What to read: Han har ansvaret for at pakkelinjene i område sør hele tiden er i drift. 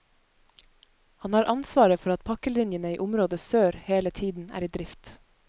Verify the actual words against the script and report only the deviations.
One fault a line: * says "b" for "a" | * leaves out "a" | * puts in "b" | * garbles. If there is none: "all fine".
all fine